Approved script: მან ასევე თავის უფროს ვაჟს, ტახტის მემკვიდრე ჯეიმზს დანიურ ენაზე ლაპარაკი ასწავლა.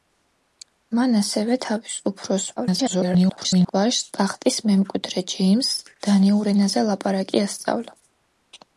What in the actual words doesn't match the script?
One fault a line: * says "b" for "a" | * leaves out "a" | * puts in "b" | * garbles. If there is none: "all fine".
* garbles